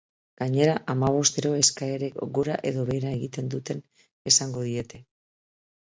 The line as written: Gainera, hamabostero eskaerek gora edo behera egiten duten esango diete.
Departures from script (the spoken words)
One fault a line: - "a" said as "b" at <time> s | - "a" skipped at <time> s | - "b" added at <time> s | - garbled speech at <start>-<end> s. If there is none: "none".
none